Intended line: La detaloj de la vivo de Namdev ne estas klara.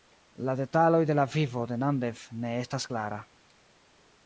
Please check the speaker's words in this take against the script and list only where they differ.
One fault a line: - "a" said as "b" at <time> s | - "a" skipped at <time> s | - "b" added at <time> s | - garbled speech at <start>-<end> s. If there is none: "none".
none